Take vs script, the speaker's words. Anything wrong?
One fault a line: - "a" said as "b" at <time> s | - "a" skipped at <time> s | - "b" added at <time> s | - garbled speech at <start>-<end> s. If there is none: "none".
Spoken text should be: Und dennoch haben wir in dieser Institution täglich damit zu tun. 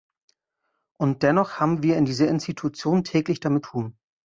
- "zu" skipped at 3.6 s